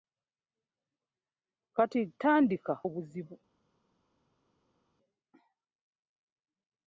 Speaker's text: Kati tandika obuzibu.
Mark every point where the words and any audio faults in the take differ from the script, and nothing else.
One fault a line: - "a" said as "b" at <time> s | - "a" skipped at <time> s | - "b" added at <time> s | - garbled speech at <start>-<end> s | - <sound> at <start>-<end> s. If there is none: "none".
none